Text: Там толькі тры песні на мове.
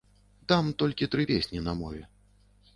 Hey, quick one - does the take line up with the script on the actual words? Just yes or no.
yes